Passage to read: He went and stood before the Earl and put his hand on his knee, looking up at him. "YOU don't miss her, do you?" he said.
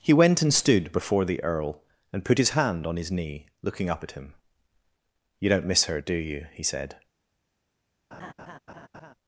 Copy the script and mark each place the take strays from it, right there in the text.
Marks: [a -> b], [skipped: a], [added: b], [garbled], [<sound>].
He went and stood before the Earl and put his hand on his knee, looking up at him. "YOU don't miss her, do you?" he said. [laugh]